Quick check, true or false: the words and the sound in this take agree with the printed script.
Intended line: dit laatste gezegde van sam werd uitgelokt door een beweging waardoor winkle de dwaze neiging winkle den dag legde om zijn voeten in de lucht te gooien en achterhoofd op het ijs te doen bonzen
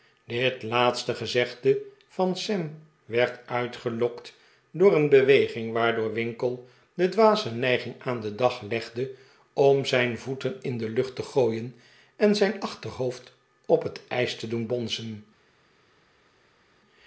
false